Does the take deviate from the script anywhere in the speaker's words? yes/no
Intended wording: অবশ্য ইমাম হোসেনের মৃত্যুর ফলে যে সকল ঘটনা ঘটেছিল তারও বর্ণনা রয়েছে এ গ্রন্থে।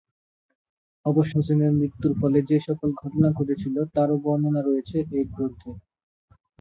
yes